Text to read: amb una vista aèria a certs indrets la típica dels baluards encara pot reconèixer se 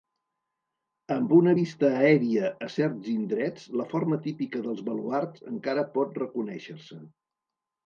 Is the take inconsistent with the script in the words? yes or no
yes